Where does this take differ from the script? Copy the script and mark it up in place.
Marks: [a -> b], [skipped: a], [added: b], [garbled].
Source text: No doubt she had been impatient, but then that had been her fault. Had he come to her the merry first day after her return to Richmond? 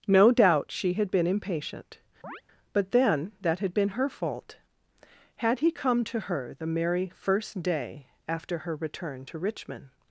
No doubt she had been impatient, but then that had been her fault. Had he come to her the merry first day after her return to Richmond?